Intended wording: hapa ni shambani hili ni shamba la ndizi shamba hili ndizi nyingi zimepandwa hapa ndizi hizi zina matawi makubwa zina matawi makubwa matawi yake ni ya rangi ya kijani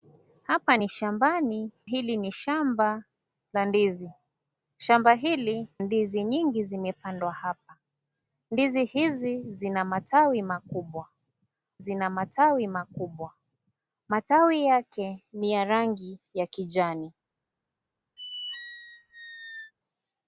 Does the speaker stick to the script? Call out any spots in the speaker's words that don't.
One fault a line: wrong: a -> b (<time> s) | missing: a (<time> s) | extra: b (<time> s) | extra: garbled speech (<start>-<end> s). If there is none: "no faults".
no faults